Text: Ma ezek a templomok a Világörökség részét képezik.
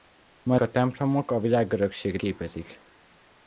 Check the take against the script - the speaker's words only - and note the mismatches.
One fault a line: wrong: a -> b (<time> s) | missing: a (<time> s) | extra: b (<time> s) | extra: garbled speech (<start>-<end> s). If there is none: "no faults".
missing: ezek (0.6 s)
missing: részét (2.2 s)